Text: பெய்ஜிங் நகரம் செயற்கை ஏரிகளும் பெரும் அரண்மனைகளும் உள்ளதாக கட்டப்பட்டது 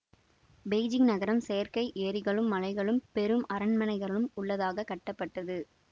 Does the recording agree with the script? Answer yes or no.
no